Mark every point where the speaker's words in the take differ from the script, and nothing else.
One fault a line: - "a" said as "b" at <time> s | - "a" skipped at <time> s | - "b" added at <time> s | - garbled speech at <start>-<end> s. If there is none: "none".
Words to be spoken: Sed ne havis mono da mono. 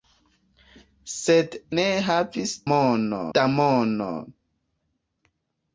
none